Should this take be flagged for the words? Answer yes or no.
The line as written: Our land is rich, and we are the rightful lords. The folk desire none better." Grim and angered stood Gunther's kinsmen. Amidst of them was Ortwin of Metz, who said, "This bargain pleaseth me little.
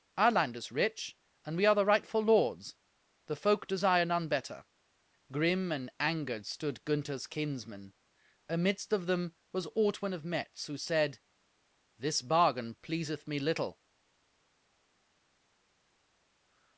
no